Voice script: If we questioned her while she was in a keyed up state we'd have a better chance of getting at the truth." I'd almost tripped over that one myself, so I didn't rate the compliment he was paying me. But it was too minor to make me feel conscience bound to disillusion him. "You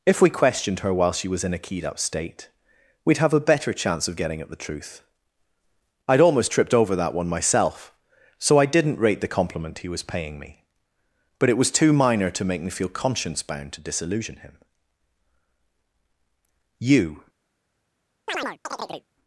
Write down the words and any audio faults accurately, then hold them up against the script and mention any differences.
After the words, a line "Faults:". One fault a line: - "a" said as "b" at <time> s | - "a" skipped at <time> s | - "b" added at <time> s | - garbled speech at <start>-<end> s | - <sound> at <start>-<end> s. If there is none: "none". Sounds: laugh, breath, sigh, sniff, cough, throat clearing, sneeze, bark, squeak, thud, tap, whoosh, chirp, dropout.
If we questioned her while she was in a keyed up state we'd have a better chance of getting at the truth." I'd almost tripped over that one myself, so I didn't rate the compliment he was paying me. But it was too minor to make me feel conscience bound to disillusion him. "You
Faults:
- chirp at 18.3-19.1 s